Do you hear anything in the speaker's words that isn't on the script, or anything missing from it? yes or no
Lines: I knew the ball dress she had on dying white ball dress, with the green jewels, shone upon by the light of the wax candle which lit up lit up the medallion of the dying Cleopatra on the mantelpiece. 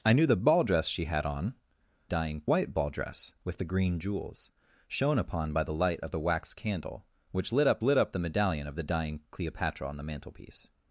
no